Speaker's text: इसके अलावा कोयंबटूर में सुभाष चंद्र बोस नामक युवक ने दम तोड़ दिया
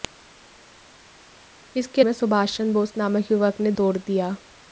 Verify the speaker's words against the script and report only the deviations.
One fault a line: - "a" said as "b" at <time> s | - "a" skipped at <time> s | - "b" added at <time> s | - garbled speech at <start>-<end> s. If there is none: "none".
- "अलावा कोयंबटूर" skipped at 2.0 s
- "दम" skipped at 3.7 s